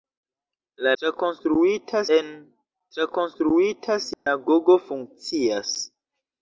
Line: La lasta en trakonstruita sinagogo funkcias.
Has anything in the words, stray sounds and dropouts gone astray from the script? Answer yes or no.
yes